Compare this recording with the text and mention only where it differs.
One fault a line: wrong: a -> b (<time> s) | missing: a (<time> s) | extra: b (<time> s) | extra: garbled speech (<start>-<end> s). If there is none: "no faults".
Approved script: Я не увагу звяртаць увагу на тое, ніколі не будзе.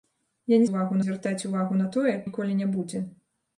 no faults